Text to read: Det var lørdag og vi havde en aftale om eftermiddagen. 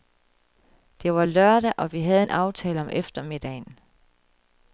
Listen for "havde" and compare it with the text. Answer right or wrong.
right